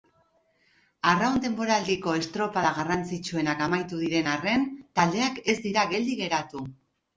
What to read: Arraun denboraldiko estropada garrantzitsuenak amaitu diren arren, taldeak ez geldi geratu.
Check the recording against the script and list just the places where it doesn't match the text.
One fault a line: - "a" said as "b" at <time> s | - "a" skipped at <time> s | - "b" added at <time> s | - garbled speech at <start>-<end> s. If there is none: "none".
- "dira" added at 5.7 s